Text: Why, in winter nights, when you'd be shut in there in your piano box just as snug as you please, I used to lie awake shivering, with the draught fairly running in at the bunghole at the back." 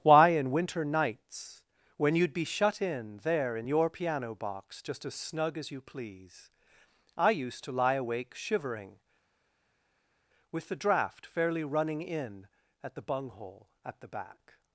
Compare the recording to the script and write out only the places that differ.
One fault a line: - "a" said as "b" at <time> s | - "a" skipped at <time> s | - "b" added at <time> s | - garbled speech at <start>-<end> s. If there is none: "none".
none